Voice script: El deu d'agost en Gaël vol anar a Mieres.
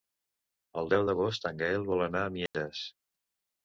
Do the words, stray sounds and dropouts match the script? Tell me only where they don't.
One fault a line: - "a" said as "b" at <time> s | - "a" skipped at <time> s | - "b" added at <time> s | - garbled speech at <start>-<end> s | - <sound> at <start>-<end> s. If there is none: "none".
- dropout at 2.5-2.5 s